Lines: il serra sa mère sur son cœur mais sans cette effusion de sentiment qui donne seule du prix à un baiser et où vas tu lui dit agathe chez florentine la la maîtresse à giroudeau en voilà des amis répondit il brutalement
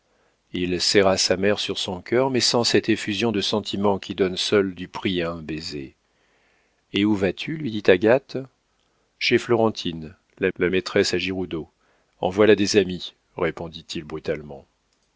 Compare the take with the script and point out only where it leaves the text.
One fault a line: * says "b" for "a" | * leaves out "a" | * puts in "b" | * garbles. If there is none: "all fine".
all fine